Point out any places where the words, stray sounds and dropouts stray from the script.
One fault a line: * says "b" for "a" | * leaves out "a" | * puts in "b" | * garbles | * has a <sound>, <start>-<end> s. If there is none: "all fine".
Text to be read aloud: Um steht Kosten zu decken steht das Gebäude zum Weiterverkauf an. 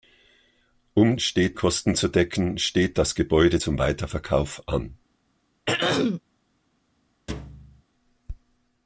* has a throat clearing, 5.7-6.2 s
* has a thud, 7.3-7.8 s